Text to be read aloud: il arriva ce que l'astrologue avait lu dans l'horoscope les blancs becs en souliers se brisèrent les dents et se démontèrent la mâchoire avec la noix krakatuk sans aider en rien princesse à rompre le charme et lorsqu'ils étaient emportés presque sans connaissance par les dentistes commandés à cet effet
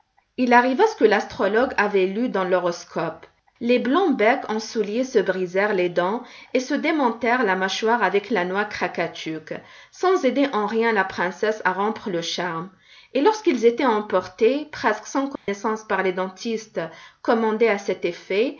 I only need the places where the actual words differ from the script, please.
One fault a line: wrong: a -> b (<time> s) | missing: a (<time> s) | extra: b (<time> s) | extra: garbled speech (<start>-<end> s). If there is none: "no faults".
extra: la (10.9 s)